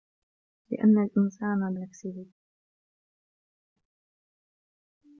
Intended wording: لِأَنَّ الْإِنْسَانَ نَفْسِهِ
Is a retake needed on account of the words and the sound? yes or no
no